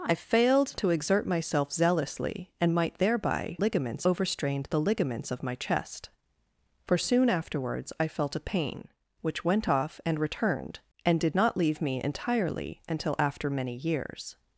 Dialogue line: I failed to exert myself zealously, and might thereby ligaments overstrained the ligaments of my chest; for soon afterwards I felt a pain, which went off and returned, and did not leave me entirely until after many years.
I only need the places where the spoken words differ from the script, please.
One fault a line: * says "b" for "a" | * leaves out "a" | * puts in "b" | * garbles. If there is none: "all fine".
all fine